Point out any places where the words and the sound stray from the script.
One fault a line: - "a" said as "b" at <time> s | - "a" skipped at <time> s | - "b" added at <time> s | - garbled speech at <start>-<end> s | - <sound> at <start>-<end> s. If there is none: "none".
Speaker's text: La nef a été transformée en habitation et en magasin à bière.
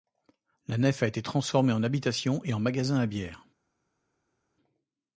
none